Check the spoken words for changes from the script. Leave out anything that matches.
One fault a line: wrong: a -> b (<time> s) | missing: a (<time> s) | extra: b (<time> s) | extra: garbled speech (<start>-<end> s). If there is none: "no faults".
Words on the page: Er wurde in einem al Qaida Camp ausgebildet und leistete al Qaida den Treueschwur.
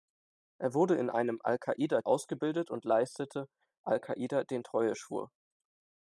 missing: Camp (2.0 s)